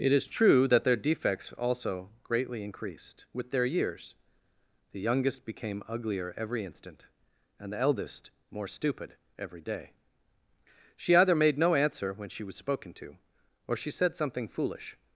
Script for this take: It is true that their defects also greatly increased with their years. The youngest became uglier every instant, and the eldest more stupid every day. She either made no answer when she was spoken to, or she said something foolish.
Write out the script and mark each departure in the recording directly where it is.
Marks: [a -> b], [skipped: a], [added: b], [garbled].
It is true that their defects also greatly increased with their years. The youngest became uglier every instant, and the eldest more stupid every day. She either made no answer when she was spoken to, or she said something foolish.